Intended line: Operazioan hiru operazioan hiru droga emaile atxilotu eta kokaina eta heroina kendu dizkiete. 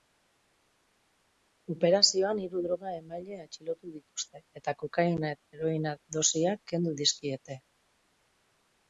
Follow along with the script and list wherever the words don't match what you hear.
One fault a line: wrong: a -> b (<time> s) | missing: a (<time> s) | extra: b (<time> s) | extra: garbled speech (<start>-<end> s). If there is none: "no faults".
missing: operazioan hiru (2.6 s)
extra: dituzte (4.0 s)
extra: dosiak (6.2 s)